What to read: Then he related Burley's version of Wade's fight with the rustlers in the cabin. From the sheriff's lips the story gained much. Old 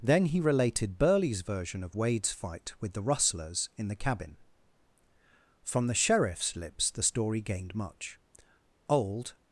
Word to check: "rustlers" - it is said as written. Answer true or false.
true